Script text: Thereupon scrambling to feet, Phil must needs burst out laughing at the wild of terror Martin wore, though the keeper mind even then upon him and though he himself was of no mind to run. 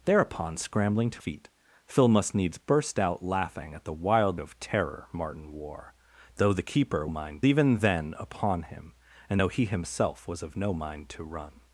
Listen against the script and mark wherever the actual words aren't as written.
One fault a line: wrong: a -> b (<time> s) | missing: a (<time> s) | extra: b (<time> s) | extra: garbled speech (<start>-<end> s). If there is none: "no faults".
no faults